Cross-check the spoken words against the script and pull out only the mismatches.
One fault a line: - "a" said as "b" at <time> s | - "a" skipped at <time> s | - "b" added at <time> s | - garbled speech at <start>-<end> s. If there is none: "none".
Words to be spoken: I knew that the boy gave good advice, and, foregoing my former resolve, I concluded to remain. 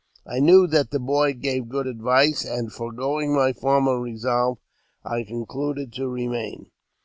none